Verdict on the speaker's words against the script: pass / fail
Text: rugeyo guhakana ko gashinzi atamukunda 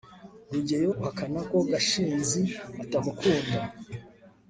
pass